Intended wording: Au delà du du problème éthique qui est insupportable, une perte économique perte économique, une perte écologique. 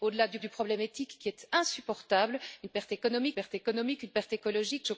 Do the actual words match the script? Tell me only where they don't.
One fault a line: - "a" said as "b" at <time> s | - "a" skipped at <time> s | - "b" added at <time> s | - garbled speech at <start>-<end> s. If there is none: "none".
none